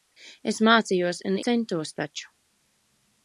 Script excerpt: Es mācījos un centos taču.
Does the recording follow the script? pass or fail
pass